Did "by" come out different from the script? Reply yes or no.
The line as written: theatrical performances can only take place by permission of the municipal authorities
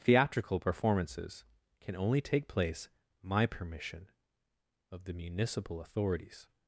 yes